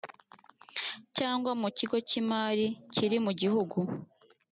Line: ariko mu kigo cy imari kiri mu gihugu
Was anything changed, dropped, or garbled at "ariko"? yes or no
yes